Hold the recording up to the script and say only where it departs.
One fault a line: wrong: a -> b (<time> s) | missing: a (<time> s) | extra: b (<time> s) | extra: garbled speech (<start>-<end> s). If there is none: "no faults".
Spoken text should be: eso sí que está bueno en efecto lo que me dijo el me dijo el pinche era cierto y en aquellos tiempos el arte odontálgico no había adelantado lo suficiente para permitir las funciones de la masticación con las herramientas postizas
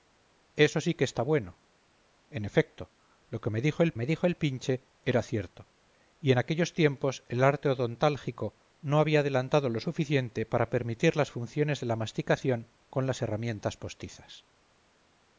no faults